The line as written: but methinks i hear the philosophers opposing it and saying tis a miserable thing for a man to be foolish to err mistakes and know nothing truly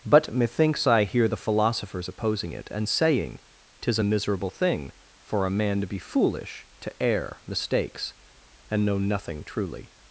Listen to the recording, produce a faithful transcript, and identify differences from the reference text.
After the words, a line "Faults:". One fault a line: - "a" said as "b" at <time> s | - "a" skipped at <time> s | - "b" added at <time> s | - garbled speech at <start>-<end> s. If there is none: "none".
but methinks i hear the philosophers opposing it and saying tis a miserable thing for a man to be foolish to err mistakes and know nothing truly
Faults:
none